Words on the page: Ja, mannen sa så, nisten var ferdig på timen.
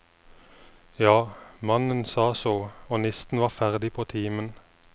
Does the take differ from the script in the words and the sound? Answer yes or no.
yes